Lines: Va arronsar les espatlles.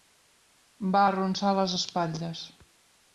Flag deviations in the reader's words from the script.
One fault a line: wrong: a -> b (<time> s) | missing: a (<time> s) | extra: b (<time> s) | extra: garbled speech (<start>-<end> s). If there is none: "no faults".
no faults